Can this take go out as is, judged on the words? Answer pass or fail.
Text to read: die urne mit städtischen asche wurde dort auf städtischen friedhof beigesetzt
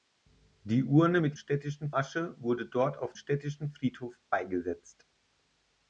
pass